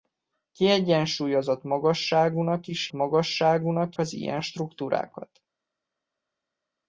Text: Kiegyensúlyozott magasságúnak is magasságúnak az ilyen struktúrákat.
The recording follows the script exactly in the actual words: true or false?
true